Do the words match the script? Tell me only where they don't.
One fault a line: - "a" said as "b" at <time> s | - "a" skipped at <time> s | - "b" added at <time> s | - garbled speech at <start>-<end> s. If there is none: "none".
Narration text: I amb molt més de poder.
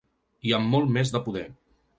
none